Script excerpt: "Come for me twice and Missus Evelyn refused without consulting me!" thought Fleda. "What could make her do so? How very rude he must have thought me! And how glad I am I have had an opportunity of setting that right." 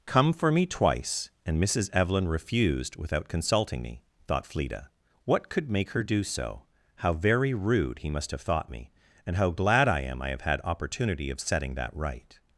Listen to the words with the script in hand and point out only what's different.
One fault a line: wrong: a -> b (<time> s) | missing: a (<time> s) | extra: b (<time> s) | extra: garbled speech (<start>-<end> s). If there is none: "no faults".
missing: an (10.6 s)